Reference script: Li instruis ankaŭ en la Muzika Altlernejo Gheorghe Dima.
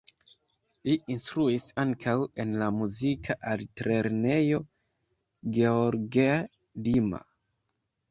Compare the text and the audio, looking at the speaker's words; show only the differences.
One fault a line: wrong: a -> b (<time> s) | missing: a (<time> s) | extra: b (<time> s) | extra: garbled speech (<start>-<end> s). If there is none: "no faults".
no faults